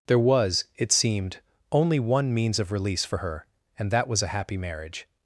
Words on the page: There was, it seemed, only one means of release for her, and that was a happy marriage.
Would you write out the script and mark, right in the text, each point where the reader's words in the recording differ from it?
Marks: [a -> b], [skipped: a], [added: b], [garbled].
There was, it seemed, only one means of release for her, and that was a happy marriage.